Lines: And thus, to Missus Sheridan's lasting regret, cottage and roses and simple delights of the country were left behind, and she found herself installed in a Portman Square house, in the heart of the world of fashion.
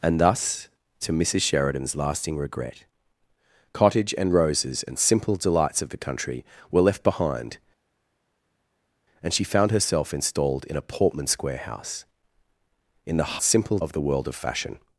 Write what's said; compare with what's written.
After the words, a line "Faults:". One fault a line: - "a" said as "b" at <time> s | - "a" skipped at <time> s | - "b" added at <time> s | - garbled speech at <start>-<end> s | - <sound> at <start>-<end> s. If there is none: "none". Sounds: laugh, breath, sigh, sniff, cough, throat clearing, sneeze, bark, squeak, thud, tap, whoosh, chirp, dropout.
And thus, to Missus Sheridan's lasting regret, cottage and roses and simple delights of the country were left behind, and she found herself installed in a Portman Square house, in the simple of the world of fashion.
Faults:
- "heart" said as "simple" at 13.4 s